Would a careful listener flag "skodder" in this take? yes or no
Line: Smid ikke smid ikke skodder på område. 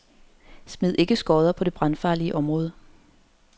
yes